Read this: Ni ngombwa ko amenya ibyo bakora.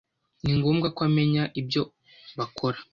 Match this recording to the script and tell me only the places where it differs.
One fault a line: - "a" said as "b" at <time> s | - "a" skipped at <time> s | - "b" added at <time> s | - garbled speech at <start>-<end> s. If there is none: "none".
none